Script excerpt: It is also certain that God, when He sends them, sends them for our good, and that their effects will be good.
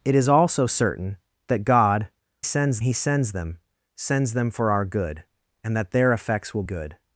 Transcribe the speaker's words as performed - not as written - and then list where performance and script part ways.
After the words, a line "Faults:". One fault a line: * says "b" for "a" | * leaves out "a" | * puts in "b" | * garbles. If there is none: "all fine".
It is also certain that God, sends He sends them, sends them for our good, and that their effects will good.
Faults:
* says "sends" for "when"
* leaves out "be"